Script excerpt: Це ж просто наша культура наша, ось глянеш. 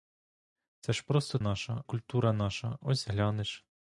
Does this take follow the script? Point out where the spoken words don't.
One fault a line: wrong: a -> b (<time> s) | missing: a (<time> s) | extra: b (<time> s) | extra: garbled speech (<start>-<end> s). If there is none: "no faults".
no faults